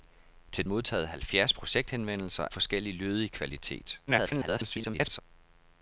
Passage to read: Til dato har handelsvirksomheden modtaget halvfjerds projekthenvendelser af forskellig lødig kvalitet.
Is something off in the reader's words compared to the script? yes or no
yes